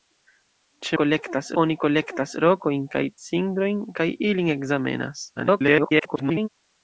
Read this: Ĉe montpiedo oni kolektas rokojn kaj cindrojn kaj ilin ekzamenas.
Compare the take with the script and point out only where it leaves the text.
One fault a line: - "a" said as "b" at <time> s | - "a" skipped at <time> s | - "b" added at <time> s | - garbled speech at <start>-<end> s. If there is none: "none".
- "montpiedo" said as "kolektas" at 1.0 s
- garbled speech at 5.4-6.5 s